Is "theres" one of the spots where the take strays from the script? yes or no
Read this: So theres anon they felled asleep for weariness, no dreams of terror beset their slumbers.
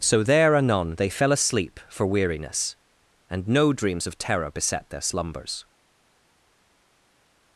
yes